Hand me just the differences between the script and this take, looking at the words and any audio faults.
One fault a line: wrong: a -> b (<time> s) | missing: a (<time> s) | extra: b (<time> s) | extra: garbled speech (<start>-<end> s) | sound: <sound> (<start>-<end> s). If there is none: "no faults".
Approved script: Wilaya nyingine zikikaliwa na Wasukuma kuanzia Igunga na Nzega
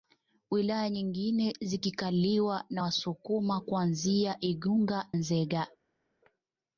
missing: na (5.1 s)